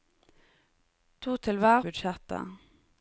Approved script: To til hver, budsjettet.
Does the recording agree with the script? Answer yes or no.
yes